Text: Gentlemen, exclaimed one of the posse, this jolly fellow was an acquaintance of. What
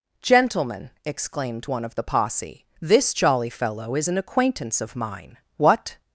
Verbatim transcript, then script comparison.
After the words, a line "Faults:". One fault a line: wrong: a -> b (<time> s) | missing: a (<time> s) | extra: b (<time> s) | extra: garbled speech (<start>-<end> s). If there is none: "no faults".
Gentlemen, exclaimed one of the posse, this jolly fellow is an acquaintance of mine. What
Faults:
wrong: was -> is (3.9 s)
extra: mine (4.9 s)